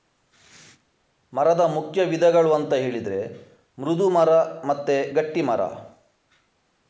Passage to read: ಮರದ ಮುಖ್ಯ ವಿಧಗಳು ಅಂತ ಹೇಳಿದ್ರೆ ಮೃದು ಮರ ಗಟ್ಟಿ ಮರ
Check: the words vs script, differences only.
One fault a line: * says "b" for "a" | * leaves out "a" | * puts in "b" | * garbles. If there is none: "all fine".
* puts in "ಮತ್ತೆ"